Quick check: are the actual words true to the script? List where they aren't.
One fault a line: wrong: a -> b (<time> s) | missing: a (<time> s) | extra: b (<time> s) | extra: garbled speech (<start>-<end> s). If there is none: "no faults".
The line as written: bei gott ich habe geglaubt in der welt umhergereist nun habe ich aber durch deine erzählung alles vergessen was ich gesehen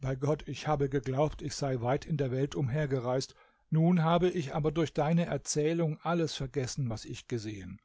extra: ich sei weit (1.4 s)